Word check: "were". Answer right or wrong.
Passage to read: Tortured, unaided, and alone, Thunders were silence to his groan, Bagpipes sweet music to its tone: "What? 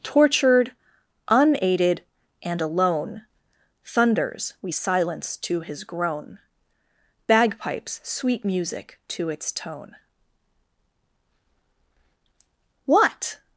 wrong